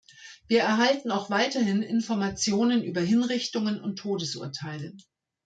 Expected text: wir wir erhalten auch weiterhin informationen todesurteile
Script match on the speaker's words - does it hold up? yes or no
no